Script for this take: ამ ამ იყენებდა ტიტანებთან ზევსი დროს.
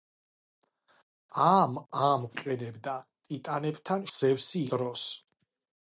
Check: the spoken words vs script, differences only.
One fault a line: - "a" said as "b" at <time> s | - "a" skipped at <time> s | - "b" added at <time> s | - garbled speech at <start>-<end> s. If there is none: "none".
none